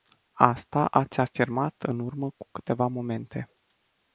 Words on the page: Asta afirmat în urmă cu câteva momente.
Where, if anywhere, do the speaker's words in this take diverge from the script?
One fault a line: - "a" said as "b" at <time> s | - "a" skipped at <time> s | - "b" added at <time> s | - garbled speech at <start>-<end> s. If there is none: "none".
- "ați" added at 0.9 s